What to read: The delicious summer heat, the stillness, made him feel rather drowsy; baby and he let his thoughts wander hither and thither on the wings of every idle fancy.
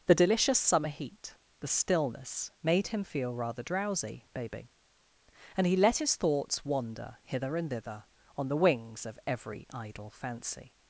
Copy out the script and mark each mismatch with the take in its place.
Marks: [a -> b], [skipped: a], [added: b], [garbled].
The delicious summer heat, the stillness, made him feel rather drowsy; baby and he let his thoughts wander hither and thither on the wings of every idle fancy.